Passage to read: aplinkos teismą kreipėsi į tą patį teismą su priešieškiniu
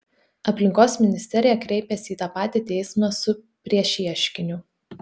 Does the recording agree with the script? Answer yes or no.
no